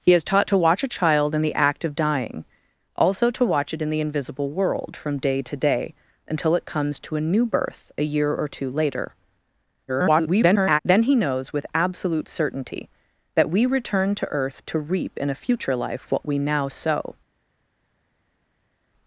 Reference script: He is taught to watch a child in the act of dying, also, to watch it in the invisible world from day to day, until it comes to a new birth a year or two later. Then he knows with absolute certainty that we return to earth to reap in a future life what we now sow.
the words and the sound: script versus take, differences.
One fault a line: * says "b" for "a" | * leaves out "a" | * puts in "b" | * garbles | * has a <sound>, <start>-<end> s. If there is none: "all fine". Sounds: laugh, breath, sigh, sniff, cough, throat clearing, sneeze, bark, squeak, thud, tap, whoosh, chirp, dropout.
* garbles